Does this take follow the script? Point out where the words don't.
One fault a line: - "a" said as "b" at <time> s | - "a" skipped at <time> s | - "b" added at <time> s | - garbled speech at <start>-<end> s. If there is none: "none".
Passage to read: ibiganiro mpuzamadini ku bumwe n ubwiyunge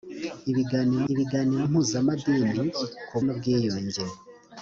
- "ibiganiro" added at 1.1 s
- "bumwe" skipped at 3.2 s